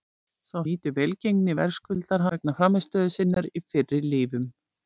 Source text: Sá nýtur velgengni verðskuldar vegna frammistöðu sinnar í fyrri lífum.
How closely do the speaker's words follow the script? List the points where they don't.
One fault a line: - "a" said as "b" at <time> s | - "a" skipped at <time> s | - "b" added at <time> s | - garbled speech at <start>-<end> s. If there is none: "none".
none